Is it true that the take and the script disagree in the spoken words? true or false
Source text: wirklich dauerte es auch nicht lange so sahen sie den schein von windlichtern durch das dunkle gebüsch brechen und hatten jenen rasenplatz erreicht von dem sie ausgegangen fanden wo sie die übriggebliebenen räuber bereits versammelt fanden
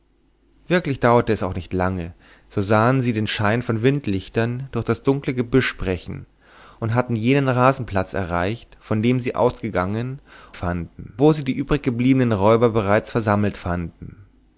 false